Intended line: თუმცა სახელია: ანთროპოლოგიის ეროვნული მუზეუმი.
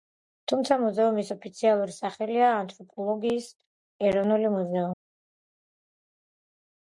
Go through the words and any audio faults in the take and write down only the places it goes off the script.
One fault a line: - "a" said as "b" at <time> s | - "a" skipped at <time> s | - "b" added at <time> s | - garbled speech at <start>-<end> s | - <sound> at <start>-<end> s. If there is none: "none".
- "მუზეუმის ოფიციალური" added at 0.8 s